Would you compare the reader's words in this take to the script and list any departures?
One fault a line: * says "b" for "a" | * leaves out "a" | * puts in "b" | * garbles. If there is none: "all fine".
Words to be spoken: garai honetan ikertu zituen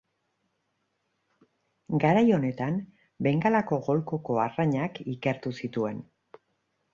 * puts in "bengalako golkoko arrainak"